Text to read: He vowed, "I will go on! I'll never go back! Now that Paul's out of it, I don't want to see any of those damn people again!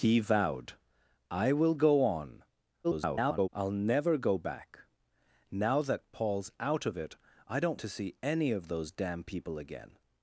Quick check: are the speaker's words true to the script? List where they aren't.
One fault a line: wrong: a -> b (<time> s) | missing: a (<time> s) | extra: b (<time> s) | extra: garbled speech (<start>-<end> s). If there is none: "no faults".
extra: garbled speech (2.8-3.5 s)
missing: want (7.8 s)